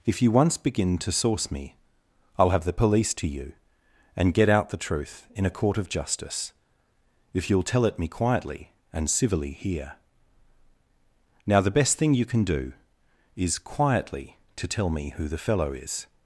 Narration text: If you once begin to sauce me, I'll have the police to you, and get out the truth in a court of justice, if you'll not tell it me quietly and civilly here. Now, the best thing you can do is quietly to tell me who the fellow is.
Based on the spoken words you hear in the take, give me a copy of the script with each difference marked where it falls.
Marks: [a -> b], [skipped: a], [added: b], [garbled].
If you once begin to sauce me, I'll have the police to you, and get out the truth in a court of justice, if you'll [skipped: not] tell it me quietly and civilly here. Now, the best thing you can do is quietly to tell me who the fellow is.